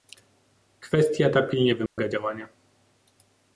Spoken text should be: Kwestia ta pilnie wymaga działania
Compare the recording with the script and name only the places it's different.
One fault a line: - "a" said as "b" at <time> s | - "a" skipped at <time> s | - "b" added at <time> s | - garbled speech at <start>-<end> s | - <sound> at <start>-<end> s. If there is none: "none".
- dropout at 1.9-2.0 s